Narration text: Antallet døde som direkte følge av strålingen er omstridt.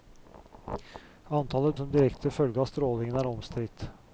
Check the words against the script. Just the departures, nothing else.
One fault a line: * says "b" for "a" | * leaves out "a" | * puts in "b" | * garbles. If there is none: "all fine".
* leaves out "døde"